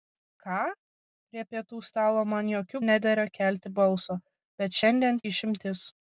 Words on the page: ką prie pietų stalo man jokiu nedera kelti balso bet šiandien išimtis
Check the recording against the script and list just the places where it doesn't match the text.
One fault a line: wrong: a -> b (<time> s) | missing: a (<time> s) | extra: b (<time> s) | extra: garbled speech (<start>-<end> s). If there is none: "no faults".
no faults